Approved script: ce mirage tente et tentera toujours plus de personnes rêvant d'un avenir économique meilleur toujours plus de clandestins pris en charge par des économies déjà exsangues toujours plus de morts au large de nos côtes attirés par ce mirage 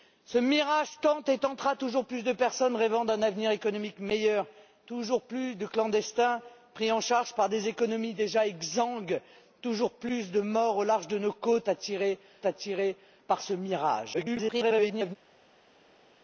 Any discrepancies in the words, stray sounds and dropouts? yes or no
yes